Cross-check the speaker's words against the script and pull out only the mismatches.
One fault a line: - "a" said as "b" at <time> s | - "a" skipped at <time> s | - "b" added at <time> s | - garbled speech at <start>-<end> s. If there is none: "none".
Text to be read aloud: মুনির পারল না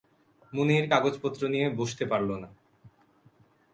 - "কাগজপত্র নিয়ে বসতে" added at 0.9 s